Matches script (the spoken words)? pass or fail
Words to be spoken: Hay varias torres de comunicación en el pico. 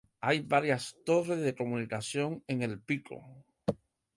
pass